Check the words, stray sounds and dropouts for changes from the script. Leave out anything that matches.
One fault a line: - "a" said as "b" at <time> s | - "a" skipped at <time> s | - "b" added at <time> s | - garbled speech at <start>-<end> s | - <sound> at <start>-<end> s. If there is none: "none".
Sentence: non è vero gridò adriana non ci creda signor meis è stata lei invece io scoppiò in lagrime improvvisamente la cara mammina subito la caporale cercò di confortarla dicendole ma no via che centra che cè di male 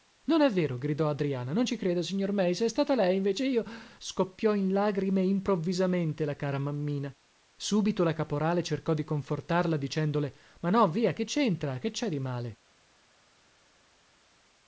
none